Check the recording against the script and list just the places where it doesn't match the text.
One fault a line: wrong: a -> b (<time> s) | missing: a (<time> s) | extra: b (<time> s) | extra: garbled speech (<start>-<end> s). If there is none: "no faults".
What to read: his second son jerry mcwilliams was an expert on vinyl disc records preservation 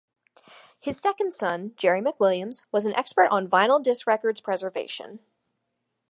no faults